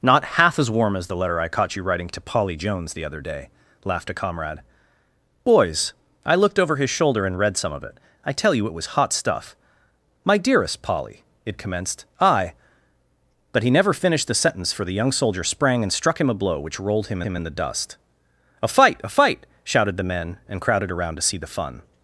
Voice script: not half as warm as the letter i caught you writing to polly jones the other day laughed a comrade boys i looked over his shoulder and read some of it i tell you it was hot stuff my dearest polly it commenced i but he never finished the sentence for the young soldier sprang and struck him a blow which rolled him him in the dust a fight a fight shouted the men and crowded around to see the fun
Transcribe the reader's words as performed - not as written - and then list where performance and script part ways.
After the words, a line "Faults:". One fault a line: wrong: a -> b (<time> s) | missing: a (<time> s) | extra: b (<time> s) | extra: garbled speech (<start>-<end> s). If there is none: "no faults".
not half as warm as the letter i caught you writing to polly jones the other day laughed a comrade boys i looked over his shoulder and read some of it i tell you it was hot stuff my dearest polly it commenced i but he never finished the sentence for the young soldier sprang and struck him a blow which rolled him him in the dust a fight a fight shouted the men and crowded around to see the fun
Faults:
no faults